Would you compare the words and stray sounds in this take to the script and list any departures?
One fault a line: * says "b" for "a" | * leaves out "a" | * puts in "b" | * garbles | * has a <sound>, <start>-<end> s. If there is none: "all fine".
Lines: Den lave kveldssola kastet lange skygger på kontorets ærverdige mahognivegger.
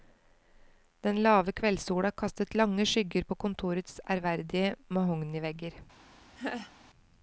* has a laugh, 6.4-6.7 s